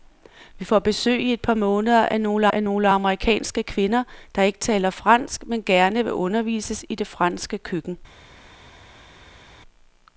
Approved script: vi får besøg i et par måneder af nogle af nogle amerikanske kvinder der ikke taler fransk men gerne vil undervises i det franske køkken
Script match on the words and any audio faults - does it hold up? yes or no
yes